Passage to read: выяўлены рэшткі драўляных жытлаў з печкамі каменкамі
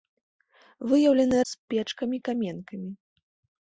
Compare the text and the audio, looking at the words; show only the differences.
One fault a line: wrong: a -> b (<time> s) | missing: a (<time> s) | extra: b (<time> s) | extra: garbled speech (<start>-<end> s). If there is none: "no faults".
missing: рэшткі драўляных жытлаў (1.4 s)